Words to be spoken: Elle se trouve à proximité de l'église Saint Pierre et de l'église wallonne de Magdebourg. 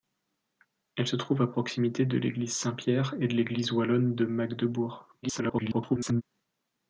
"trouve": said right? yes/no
yes